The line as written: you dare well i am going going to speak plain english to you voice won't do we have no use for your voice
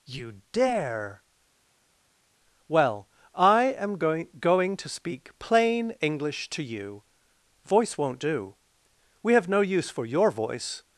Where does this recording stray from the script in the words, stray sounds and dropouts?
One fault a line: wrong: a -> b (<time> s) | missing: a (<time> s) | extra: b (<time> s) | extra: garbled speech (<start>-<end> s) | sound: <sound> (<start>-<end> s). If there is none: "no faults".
no faults